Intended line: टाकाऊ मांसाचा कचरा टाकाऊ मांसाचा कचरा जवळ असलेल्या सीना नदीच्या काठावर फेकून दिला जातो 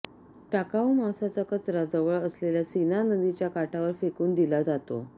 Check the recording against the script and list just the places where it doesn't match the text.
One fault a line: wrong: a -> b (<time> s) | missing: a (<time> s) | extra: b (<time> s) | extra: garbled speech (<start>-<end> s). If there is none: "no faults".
missing: टाकाऊ मांसाचा कचरा (1.8 s)